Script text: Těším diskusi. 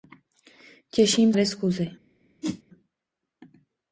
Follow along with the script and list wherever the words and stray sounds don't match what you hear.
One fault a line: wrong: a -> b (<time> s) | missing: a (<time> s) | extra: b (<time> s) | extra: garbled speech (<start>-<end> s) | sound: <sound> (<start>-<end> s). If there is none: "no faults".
sound: whoosh (2.4-2.6 s)